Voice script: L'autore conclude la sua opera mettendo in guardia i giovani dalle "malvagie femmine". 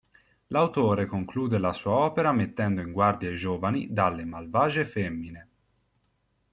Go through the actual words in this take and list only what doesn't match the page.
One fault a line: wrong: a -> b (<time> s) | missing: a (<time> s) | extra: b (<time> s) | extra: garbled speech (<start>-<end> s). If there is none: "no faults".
no faults